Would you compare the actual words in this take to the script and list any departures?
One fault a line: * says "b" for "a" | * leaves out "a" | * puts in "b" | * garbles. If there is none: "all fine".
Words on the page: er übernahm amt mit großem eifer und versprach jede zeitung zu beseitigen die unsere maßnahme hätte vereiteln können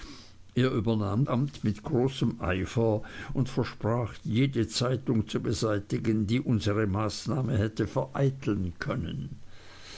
all fine